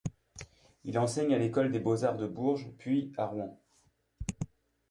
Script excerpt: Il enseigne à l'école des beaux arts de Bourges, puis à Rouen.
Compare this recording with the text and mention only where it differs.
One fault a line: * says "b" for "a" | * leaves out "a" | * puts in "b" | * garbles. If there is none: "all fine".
all fine